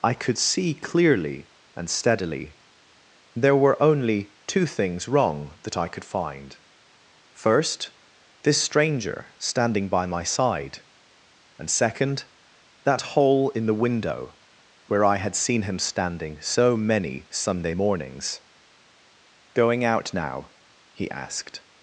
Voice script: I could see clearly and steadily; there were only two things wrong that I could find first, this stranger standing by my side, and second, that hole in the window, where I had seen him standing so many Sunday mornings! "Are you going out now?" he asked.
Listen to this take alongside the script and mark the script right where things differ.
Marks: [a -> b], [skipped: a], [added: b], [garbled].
I could see clearly and steadily; there were only two things wrong that I could find first, this stranger standing by my side, and second, that hole in the window, where I had seen him standing so many Sunday mornings! [skipped: "Are you] going out now?" he asked.